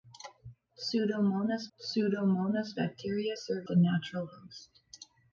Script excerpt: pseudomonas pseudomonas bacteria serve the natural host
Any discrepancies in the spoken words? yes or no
no